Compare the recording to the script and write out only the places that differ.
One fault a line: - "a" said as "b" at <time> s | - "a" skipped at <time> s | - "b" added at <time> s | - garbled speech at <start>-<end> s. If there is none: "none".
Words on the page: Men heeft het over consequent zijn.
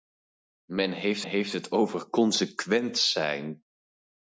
- "heeft" added at 1.2 s